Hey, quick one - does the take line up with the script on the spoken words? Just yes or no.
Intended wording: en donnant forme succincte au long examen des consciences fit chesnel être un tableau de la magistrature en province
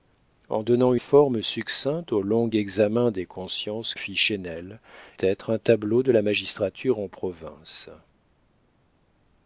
yes